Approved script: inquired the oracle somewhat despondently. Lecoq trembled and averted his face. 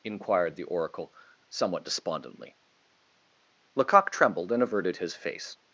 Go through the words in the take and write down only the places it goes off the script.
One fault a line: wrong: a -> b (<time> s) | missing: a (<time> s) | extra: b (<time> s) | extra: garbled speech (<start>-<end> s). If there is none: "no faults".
no faults